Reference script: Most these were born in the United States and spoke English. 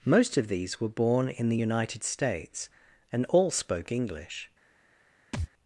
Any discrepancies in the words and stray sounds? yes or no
yes